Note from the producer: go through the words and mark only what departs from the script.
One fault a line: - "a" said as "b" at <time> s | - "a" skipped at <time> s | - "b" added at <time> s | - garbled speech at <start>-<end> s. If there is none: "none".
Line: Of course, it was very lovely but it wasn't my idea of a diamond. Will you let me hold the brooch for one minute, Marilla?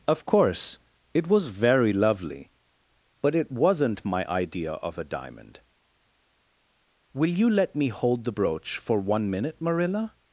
none